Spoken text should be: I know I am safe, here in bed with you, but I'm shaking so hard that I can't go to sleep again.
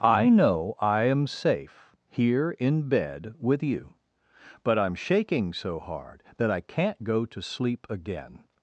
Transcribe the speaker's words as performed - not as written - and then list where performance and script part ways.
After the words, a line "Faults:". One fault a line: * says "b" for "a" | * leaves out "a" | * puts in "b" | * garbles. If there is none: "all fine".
I know I am safe, here in bed with you, but I'm shaking so hard that I can't go to sleep again.
Faults:
all fine